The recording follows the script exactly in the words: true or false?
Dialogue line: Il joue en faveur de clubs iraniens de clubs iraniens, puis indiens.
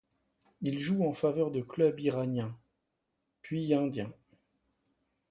false